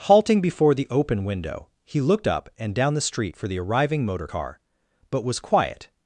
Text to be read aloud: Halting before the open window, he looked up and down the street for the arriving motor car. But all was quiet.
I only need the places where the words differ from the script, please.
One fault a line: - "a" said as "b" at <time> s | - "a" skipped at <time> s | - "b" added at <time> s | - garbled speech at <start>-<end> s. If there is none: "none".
- "all" skipped at 5.2 s